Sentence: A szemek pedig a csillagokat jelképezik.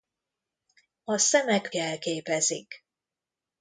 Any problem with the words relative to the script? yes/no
yes